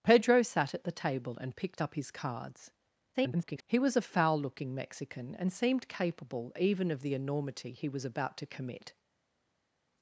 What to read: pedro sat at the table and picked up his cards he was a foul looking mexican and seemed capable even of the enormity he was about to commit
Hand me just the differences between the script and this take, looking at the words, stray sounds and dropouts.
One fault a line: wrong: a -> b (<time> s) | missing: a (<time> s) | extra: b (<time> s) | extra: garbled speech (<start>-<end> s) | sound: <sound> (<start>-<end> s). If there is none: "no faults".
extra: garbled speech (3.1-3.6 s)